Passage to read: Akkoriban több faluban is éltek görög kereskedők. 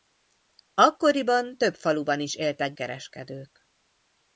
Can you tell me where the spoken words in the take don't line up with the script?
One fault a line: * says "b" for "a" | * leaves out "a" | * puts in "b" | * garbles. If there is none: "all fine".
* leaves out "görög"